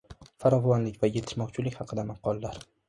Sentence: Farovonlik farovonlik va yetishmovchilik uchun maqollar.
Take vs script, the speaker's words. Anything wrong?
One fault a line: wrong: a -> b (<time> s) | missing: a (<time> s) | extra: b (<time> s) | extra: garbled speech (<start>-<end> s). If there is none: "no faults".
missing: farovonlik (1.0 s)
wrong: uchun -> haqida (1.8 s)